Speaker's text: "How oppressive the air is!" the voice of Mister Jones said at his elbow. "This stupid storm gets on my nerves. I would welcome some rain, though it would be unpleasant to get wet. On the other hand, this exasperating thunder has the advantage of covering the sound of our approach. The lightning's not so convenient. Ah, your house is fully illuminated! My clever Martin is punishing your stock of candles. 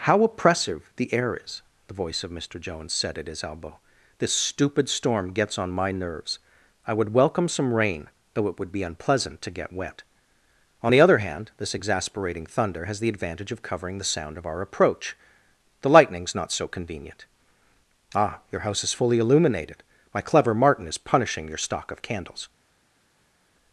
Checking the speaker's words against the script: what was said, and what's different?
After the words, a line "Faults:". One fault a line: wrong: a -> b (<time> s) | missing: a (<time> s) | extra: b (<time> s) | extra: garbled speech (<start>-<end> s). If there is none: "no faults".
"How oppressive the air is!" the voice of Mister Jones said at his elbow. "This stupid storm gets on my nerves. I would welcome some rain, though it would be unpleasant to get wet. On the other hand, this exasperating thunder has the advantage of covering the sound of our approach. The lightning's not so convenient. Ah, your house is fully illuminated! My clever Martin is punishing your stock of candles.
Faults:
no faults